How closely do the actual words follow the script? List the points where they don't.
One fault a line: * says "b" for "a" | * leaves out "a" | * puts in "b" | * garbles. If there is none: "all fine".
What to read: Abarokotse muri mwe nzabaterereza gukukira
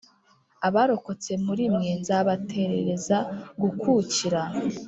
all fine